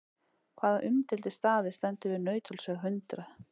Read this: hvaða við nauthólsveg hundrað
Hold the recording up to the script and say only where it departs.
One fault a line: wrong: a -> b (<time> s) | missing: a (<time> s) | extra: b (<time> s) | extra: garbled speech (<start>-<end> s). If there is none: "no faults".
extra: umdeildi staður stendur (0.9 s)